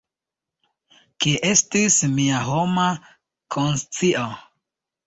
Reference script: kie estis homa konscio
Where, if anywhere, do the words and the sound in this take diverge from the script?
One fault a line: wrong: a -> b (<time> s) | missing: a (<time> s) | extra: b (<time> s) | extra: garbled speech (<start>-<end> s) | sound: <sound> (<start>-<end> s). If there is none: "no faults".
extra: mia (2.2 s)